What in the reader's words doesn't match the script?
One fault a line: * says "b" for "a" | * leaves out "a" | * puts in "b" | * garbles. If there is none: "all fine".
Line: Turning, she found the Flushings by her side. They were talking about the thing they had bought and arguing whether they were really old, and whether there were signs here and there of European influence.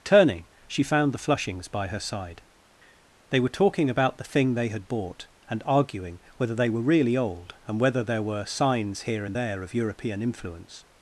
all fine